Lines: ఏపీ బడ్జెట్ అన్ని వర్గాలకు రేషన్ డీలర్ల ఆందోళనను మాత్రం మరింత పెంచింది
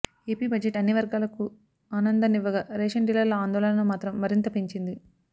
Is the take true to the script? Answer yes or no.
no